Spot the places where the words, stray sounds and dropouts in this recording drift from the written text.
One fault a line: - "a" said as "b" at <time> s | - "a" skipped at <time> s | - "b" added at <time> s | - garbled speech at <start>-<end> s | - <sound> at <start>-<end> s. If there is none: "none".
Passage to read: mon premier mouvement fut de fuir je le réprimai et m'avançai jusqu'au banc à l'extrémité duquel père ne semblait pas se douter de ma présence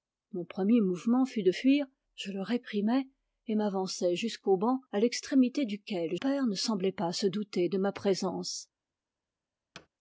- thud at 9.7-9.9 s